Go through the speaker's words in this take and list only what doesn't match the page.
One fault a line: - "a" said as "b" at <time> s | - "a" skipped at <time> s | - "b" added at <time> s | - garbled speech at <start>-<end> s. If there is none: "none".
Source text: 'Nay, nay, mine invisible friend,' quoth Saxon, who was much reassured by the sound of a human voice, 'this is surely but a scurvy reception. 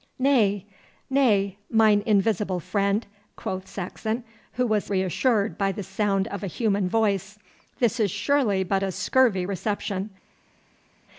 - "much" skipped at 4.9 s